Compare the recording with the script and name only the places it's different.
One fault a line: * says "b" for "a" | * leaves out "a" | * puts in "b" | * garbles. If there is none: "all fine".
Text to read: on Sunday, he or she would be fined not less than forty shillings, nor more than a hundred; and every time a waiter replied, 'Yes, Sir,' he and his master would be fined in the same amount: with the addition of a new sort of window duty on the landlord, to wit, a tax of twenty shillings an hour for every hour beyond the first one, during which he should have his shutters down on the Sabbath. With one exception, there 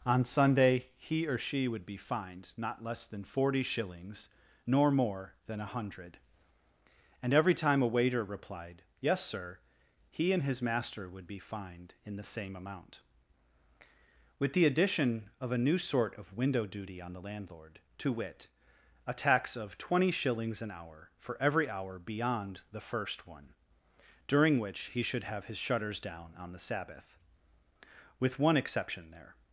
all fine